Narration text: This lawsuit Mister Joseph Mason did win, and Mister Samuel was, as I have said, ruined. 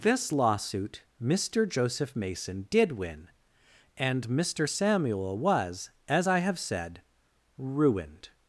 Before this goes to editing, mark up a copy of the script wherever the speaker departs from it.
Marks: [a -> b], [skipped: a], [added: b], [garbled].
This lawsuit Mister Joseph Mason did win, and Mister Samuel was, as I have said, ruined.